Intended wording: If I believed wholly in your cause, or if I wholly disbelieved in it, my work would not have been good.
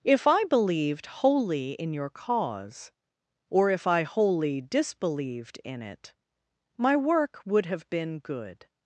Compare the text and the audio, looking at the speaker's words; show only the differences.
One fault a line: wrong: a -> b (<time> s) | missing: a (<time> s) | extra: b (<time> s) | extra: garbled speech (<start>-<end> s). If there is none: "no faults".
missing: not (7.7 s)